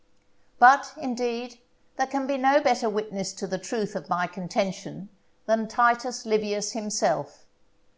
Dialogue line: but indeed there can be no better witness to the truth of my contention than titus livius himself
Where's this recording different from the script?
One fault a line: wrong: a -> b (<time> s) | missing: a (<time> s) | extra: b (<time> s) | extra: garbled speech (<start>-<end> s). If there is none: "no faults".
no faults